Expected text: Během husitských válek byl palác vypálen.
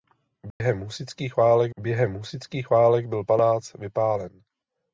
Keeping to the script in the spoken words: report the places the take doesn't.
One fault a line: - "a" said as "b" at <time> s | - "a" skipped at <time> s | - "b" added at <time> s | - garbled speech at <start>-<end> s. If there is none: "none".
- "během husitských válek" added at 1.8 s